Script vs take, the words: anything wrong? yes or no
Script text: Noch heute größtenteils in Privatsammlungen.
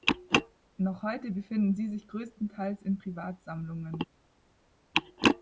yes